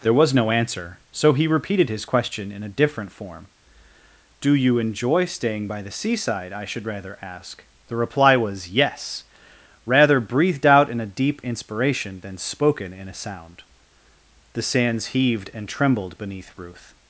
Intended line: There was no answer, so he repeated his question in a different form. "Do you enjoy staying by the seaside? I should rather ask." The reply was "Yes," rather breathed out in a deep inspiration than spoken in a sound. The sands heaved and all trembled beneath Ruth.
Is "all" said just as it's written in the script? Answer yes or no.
no